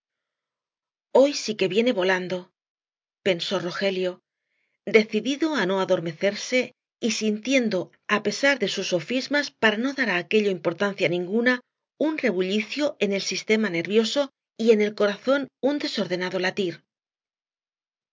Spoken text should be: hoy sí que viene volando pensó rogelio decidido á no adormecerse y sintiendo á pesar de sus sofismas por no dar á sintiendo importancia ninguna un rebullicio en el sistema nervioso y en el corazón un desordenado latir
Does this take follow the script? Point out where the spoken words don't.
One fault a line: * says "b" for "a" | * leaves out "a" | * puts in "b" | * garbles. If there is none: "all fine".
* says "para" for "por"
* says "aquello" for "sintiendo"